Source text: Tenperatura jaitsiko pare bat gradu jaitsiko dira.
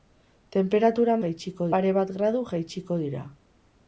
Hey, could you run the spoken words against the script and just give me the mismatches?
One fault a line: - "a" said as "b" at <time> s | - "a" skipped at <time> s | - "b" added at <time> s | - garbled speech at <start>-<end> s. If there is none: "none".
none